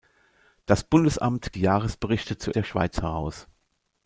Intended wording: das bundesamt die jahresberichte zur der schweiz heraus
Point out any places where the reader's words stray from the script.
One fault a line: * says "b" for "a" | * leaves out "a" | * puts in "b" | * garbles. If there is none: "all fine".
all fine